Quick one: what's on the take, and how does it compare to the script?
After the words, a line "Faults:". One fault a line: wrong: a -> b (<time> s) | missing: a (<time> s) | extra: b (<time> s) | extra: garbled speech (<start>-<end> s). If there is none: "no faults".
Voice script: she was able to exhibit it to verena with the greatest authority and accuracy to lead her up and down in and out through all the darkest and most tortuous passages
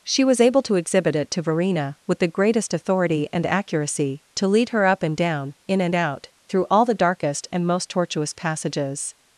she was able to exhibit it to verena with the greatest authority and accuracy to lead her up and down in and out through all the darkest and most tortuous passages
Faults:
no faults